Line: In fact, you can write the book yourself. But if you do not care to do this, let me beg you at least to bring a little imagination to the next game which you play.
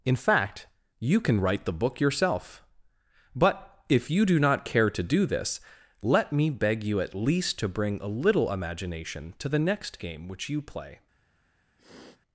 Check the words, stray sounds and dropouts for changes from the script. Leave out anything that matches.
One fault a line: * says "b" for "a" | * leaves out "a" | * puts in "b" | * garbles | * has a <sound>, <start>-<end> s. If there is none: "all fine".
* has a sniff, 11.8-12.2 s